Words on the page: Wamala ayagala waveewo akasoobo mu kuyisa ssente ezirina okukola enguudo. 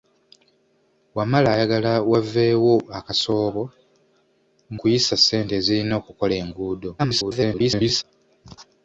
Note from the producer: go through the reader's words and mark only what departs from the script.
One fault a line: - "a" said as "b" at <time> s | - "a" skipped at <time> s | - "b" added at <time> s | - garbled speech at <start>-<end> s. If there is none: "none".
- "mu" skipped at 3.6 s
- garbled speech at 7.0-8.0 s